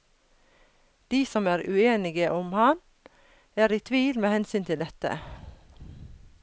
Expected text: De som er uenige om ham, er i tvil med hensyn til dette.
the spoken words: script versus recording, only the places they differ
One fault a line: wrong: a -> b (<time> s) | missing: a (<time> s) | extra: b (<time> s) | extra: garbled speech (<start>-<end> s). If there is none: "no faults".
no faults